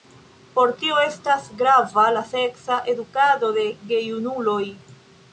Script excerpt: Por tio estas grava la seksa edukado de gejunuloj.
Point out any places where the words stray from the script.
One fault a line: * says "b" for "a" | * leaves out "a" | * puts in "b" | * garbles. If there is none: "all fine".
all fine